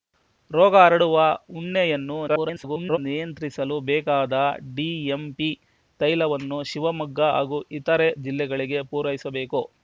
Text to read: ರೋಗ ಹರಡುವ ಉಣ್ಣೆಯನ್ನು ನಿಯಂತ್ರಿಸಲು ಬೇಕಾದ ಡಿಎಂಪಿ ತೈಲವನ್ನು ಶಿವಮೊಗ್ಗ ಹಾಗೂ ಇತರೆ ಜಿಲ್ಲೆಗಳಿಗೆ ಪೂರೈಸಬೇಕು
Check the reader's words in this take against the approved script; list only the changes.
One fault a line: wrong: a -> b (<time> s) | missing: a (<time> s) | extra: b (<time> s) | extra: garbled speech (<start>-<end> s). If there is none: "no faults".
extra: garbled speech (2.3-3.0 s)